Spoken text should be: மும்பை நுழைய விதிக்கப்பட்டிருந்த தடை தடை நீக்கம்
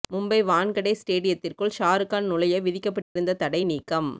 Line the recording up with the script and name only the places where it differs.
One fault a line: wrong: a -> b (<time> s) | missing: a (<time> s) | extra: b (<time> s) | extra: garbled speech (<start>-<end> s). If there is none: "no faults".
extra: வான்கடே ஸ்டேடியத்திற்குள் ஷாருக்கான் (0.4 s)
missing: தடை (3.6 s)